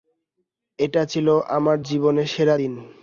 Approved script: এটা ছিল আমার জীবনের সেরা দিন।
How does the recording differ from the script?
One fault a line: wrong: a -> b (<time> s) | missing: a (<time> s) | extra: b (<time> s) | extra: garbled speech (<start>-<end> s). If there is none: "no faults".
no faults